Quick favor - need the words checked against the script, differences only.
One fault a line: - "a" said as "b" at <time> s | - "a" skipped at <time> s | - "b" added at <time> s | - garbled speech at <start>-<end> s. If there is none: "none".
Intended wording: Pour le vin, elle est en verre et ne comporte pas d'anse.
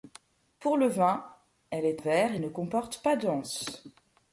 - "en" skipped at 2.0 s